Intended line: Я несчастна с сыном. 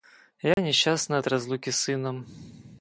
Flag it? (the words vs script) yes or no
yes